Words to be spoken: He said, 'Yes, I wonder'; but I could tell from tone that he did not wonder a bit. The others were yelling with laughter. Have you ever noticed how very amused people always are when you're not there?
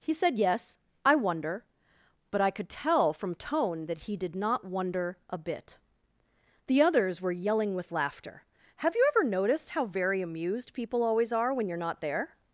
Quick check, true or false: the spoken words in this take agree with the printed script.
true